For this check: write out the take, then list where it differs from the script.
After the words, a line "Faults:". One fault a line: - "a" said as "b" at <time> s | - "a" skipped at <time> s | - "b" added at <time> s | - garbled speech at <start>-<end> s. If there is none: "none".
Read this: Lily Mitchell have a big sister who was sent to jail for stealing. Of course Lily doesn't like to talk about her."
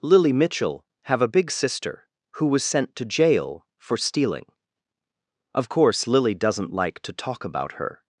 Lily Mitchell have a big sister who was sent to jail for stealing. Of course Lily doesn't like to talk about her."
Faults:
none